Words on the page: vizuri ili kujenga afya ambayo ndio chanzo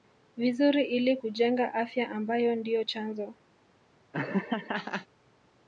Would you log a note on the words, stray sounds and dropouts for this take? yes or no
yes